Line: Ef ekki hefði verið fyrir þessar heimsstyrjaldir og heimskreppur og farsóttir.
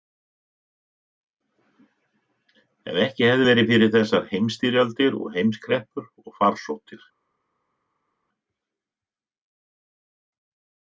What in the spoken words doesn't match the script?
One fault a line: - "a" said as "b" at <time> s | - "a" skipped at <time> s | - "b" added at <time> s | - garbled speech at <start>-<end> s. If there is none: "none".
none